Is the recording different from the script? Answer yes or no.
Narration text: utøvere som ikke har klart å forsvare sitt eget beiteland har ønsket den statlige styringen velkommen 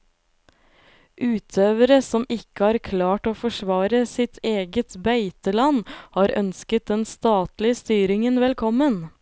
no